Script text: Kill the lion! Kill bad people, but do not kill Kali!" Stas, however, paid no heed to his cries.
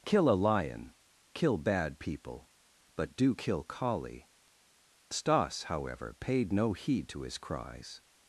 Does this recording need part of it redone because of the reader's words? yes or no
yes